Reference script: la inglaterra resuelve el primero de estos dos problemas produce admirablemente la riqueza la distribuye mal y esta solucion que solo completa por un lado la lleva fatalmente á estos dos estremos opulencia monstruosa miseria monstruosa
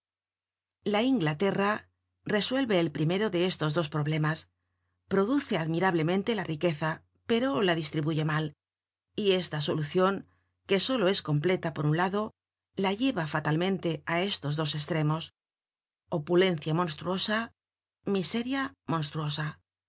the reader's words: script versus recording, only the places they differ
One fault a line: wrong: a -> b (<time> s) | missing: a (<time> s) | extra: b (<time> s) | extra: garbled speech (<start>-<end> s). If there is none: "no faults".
extra: pero (7.3 s)
extra: es (11.1 s)